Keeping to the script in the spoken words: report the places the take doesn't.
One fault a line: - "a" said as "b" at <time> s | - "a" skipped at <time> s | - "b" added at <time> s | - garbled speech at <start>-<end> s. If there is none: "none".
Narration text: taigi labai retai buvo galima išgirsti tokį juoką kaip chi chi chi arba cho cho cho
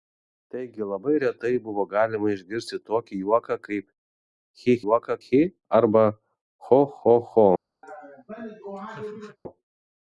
- "chi" said as "juoką" at 4.8 s